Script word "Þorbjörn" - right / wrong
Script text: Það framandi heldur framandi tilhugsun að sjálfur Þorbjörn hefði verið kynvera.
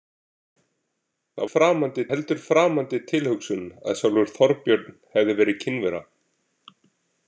right